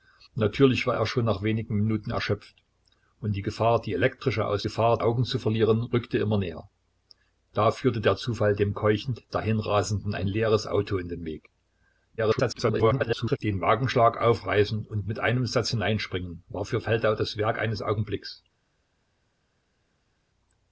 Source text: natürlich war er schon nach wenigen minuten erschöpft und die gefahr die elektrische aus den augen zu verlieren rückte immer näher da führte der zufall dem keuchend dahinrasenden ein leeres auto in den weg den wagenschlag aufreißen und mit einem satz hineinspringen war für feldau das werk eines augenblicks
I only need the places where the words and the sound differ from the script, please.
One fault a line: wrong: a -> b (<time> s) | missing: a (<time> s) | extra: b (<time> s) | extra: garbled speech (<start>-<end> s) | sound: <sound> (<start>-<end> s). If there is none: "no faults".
wrong: den -> gefahr (4.6 s)
extra: garbled speech (12.2-13.4 s)